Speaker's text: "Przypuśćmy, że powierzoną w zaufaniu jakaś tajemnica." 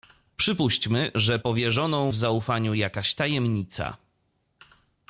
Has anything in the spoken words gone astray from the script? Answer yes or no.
no